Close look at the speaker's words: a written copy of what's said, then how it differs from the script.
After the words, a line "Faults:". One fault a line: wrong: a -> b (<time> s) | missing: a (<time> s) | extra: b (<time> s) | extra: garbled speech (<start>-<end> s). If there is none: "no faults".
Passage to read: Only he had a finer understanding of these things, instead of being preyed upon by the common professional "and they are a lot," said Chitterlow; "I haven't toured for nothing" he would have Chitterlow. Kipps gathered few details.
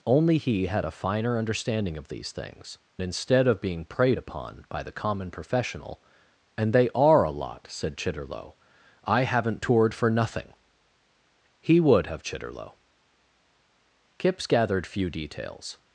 Only he had a finer understanding of these things, instead of being preyed upon by the common professional "and they are a lot," said Chitterlow; "I haven't toured for nothing" he would have Chitterlow. Kipps gathered few details.
Faults:
no faults